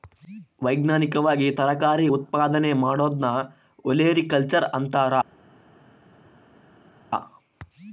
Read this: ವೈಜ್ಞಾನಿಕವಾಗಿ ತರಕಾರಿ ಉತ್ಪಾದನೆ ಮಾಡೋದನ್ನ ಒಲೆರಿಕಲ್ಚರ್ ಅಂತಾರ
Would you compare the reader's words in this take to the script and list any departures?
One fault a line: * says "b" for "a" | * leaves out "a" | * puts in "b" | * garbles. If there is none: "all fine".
all fine